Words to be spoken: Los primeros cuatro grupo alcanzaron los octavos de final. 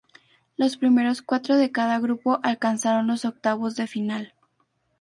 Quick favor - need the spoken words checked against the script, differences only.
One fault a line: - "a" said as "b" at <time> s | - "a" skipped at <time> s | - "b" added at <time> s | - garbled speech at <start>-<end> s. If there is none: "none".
- "de cada" added at 1.6 s